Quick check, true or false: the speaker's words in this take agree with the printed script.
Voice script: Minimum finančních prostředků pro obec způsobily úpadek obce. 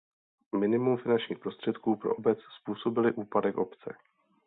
true